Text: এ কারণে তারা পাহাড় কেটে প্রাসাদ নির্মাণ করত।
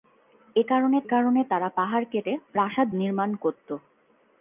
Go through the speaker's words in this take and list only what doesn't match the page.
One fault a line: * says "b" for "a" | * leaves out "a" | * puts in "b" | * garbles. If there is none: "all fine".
* puts in "কারণে"